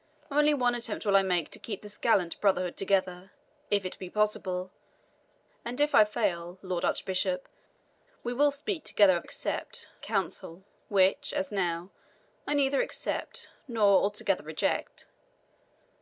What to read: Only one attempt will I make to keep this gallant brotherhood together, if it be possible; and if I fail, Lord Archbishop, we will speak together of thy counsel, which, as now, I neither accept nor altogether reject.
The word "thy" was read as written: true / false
false